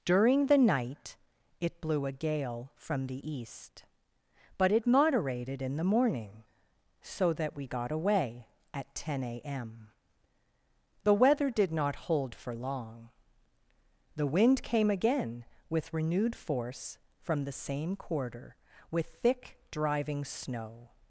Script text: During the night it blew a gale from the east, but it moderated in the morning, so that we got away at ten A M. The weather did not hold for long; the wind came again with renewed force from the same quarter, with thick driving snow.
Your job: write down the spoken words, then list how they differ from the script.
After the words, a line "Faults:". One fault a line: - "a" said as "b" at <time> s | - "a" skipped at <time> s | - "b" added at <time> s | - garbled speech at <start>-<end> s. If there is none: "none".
During the night it blew a gale from the east, but it moderated in the morning, so that we got away at ten A M. The weather did not hold for long; the wind came again with renewed force from the same quarter, with thick driving snow.
Faults:
none